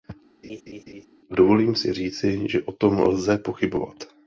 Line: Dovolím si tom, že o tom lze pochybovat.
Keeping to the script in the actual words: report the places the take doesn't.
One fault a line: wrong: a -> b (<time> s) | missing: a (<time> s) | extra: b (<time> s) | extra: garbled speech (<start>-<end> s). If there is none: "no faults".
wrong: tom -> říci (1.9 s)